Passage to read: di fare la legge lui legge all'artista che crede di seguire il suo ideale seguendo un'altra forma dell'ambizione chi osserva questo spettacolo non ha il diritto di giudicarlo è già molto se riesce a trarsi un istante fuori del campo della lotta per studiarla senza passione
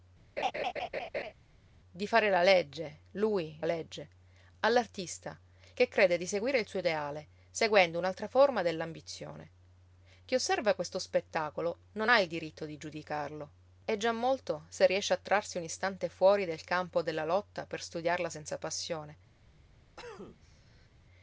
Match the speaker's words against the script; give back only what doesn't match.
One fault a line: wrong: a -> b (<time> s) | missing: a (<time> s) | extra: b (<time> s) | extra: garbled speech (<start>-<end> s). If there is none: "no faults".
no faults